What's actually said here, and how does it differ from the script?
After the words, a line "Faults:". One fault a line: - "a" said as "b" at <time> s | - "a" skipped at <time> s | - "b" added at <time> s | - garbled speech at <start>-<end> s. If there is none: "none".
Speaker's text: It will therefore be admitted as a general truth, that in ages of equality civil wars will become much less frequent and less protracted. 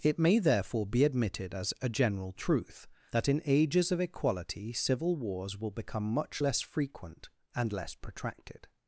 It may therefore be admitted as a general truth, that in ages of equality civil wars will become much less frequent and less protracted.
Faults:
- "will" said as "may" at 0.2 s